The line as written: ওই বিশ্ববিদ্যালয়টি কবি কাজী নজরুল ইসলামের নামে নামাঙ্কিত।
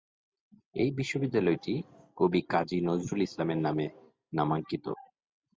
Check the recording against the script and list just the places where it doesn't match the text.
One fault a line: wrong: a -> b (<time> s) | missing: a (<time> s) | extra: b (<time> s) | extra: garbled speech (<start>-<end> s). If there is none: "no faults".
wrong: ওই -> এই (0.8 s)